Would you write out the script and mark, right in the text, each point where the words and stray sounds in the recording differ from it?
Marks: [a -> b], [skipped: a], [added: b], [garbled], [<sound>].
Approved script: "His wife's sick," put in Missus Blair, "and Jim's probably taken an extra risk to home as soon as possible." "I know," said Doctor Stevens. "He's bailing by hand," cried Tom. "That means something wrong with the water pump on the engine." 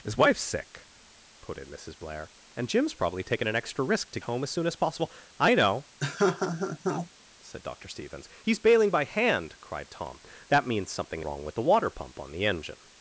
"His wife's sick," put in Missus Blair, "and Jim's probably taken an extra risk to home as soon as possible." "I know," [laugh] said Doctor Stevens. "He's bailing by hand," cried Tom. "That means something wrong with the water pump on the engine."